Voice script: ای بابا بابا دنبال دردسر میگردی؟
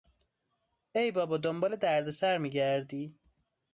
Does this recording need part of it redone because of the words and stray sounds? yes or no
yes